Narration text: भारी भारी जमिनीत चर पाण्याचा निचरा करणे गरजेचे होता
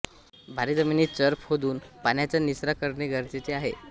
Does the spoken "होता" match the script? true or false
false